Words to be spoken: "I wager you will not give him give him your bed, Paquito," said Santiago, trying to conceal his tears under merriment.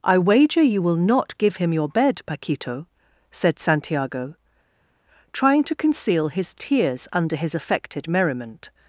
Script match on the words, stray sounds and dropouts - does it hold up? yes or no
no